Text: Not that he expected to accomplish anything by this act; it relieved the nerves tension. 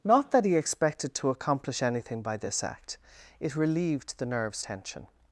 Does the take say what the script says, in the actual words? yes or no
yes